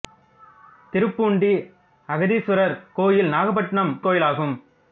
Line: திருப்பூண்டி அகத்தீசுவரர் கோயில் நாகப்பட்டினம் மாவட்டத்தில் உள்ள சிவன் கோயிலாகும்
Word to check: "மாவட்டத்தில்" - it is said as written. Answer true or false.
false